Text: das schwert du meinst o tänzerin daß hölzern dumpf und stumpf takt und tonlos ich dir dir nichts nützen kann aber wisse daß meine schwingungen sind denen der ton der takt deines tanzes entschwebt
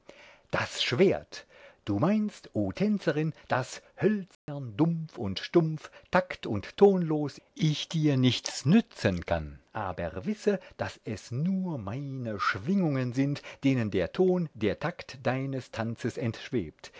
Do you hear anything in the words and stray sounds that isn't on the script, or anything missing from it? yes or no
yes